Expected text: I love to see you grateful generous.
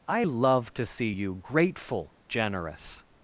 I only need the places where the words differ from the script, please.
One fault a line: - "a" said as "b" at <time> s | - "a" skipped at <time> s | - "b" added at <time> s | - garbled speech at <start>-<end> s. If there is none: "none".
none